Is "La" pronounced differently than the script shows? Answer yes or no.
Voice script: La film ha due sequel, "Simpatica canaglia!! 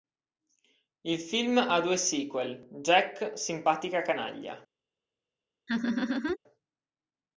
yes